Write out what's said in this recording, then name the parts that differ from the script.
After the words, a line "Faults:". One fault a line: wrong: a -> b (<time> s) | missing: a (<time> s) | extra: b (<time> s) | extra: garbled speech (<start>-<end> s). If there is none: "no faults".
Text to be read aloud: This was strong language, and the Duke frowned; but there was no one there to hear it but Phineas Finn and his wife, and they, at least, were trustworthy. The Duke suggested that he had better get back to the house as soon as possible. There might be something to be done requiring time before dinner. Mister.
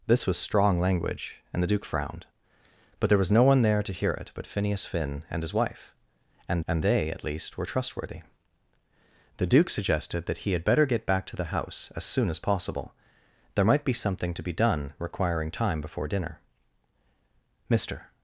This was strong language, and the Duke frowned; but there was no one there to hear it but Phineas Finn and his wife, and and they, at least, were trustworthy. The Duke suggested that he had better get back to the house as soon as possible. There might be something to be done requiring time before dinner. Mister.
Faults:
extra: and (6.7 s)